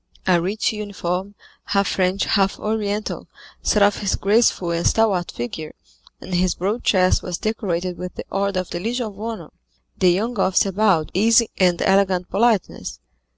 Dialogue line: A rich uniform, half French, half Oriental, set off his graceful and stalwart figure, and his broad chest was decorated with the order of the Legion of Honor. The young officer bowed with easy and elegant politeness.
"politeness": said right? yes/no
yes